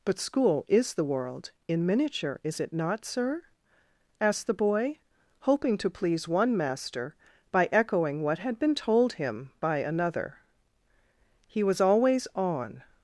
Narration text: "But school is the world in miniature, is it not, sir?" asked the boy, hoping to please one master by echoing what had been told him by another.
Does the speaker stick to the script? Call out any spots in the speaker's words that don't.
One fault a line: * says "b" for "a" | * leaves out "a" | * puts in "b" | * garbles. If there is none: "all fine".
* puts in "He was always on"